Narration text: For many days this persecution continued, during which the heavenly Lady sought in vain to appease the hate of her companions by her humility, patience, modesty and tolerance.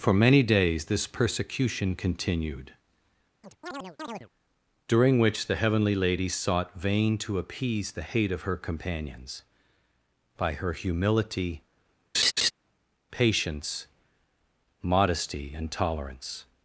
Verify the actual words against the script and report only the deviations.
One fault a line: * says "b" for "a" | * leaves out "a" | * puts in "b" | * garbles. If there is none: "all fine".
* leaves out "in"